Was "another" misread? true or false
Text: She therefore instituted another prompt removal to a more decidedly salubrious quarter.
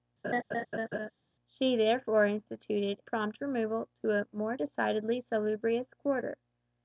true